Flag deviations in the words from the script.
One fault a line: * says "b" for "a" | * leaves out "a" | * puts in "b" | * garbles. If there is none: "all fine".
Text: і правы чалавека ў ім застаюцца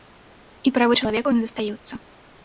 all fine